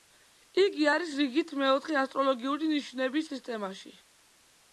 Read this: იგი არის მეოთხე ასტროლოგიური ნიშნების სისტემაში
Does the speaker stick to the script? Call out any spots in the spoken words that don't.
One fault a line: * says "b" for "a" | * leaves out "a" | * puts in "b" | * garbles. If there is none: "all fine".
* puts in "რიგით"